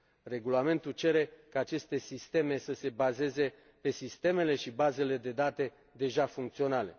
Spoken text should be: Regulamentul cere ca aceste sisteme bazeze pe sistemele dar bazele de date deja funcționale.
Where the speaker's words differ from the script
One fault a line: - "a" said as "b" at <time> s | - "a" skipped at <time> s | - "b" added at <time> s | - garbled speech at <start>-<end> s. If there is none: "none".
- "să se" added at 2.6 s
- "dar" said as "și" at 4.5 s